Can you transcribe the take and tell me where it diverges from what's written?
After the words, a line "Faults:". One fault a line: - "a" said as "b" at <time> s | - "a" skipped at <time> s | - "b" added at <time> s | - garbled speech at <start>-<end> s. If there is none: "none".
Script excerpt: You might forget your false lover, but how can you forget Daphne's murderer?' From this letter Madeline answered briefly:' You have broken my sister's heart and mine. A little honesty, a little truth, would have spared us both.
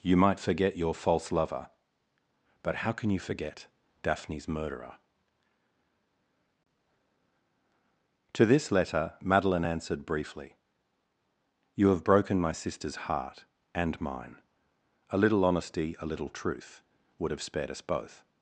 You might forget your false lover, but how can you forget Daphne's murderer?' To this letter Madeline answered briefly:' You have broken my sister's heart and mine. A little honesty, a little truth, would have spared us both.
Faults:
- "From" said as "To" at 8.3 s